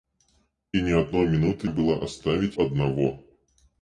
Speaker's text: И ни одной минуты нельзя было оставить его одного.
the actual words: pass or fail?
fail